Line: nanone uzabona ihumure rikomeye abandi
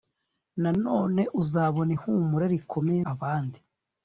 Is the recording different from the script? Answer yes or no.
no